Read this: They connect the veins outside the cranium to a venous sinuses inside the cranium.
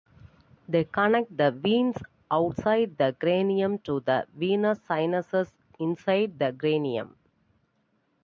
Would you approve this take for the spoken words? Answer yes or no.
no